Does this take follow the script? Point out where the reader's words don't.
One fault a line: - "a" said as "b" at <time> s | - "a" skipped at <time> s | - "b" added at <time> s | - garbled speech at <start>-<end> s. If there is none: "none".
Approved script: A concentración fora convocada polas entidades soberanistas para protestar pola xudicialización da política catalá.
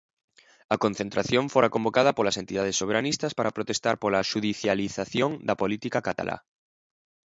none